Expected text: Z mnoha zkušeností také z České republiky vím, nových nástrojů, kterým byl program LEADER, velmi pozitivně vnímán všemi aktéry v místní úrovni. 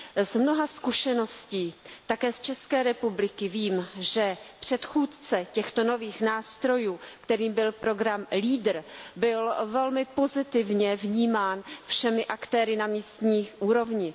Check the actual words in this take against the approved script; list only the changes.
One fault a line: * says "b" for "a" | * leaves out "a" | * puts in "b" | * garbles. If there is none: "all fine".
* puts in "že předchůdce těchto"
* puts in "byl"
* says "na" for "v"